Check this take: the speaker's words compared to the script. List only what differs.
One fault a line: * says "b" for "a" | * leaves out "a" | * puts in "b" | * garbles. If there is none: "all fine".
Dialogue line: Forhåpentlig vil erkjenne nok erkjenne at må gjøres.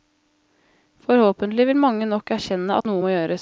* says "mange" for "erkjenne"
* puts in "noe"